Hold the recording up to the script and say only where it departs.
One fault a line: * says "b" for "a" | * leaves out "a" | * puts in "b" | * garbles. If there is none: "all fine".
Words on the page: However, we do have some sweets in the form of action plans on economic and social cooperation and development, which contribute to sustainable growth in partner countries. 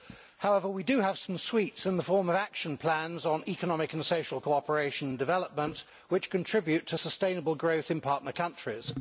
all fine